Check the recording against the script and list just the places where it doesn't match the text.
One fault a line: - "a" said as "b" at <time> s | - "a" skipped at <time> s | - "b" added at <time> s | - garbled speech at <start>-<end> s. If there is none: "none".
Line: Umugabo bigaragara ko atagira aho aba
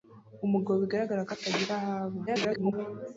- garbled speech at 2.3-2.7 s